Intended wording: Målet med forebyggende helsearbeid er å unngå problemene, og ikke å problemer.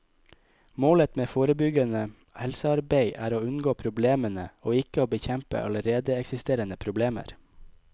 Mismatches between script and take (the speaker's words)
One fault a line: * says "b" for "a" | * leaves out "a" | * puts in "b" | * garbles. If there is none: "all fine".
* puts in "bekjempe allerede eksisterende"